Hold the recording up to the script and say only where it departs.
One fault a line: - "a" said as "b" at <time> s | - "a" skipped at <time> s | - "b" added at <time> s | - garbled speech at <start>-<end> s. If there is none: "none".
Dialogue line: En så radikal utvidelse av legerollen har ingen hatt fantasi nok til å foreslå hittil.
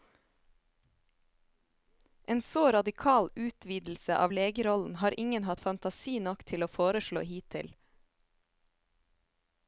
none